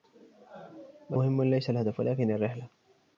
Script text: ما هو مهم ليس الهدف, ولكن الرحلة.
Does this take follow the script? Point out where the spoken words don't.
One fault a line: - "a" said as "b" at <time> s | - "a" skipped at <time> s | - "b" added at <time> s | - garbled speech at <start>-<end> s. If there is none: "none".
- "هو" skipped at 1.2 s